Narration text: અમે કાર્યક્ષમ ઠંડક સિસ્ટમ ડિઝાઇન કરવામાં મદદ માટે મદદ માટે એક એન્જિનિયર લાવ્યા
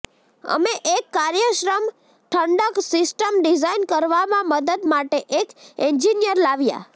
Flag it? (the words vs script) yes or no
yes